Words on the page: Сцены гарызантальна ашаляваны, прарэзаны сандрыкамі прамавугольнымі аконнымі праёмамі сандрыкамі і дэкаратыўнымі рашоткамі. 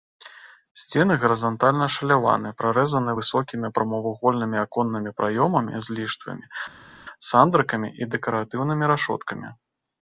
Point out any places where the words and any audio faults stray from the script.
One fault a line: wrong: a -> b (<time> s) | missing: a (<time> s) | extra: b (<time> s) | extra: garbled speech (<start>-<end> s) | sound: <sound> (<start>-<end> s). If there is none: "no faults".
wrong: сандрыкамі -> высокімі (3.2 s)
extra: з ліштвамі (5.9 s)